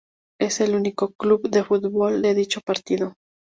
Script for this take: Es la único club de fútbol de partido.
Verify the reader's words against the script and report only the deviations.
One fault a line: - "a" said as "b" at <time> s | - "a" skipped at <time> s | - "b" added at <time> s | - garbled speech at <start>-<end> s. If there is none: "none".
- "la" said as "el" at 0.6 s
- "dicho" added at 2.3 s